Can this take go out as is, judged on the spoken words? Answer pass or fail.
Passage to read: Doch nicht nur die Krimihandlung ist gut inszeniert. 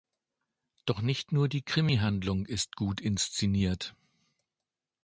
pass